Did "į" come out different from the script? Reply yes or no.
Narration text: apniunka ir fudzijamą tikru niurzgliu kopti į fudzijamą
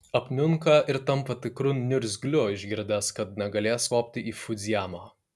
no